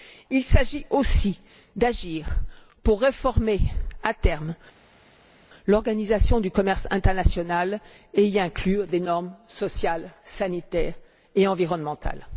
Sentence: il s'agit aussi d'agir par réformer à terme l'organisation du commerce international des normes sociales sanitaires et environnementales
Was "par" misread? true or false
true